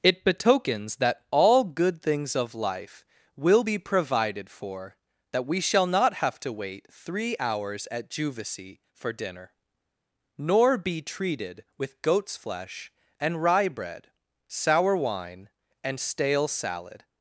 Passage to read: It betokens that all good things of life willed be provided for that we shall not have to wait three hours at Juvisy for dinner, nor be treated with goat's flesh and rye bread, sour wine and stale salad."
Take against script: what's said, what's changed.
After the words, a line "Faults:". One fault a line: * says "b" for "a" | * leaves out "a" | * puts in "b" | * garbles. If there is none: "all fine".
It betokens that all good things of life will be provided for that we shall not have to wait three hours at Juvisy for dinner, nor be treated with goat's flesh and rye bread, sour wine and stale salad."
Faults:
* says "will" for "willed"